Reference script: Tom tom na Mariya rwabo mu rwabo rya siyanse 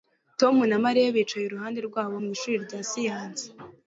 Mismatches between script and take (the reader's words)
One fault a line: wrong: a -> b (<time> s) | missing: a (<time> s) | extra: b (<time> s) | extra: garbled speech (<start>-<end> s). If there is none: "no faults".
missing: tom (0.6 s)
extra: bicaye iruhande (1.1 s)
wrong: rwabo -> ishuri (2.4 s)